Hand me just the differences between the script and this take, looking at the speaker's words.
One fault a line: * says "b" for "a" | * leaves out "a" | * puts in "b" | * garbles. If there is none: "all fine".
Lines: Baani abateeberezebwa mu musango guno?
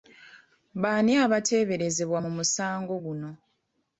all fine